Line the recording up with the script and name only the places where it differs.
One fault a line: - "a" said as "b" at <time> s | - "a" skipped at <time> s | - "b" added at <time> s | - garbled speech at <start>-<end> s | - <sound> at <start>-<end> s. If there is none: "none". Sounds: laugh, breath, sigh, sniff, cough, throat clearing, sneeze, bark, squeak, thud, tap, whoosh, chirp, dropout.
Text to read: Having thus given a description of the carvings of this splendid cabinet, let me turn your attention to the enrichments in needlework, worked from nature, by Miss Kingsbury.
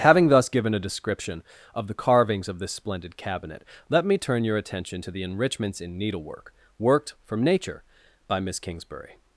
none